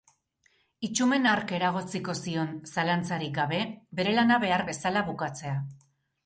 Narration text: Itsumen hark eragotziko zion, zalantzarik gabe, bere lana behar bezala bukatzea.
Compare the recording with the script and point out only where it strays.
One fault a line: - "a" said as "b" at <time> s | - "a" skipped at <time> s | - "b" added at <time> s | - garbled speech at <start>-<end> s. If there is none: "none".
none